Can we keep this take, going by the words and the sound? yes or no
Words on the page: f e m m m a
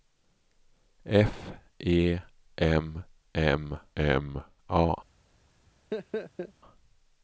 no